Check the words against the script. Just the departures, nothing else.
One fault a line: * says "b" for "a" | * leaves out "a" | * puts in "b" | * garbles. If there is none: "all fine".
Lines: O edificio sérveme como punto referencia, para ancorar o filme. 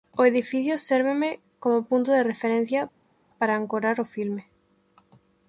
* puts in "de"